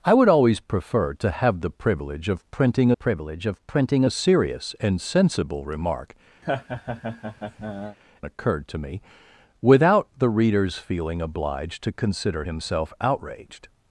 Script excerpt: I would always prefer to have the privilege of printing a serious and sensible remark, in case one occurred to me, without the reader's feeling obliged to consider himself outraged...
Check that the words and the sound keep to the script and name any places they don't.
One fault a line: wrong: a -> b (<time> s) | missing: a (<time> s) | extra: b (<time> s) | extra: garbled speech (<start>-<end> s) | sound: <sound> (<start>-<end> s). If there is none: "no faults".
extra: privilege of printing (2.9 s)
missing: in case one (6.2 s)
sound: laugh (6.4-8.0 s)